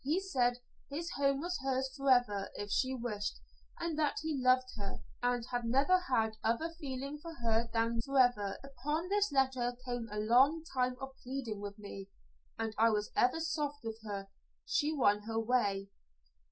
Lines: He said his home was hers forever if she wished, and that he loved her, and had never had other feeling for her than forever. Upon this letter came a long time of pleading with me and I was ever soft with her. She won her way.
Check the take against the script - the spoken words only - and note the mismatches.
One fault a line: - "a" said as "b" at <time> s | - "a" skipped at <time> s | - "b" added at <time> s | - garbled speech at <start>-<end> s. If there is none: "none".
none